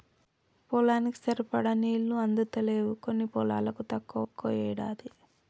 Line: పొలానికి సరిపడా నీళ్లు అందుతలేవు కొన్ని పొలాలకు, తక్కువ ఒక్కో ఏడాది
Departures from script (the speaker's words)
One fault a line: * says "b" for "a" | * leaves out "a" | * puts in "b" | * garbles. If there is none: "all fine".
all fine